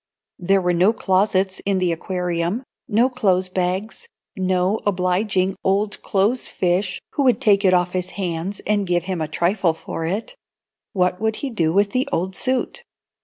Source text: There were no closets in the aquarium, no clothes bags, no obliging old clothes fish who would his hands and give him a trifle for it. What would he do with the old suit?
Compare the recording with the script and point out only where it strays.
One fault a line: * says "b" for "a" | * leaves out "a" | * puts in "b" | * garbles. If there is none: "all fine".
* puts in "take it off"